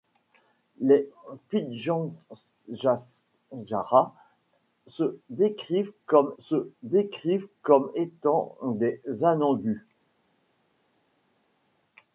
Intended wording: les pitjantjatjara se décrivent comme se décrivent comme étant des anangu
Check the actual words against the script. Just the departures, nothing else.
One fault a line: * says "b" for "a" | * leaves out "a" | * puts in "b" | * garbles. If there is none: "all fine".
all fine